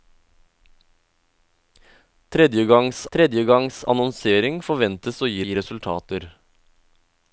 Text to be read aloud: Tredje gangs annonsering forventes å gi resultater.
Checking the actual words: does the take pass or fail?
fail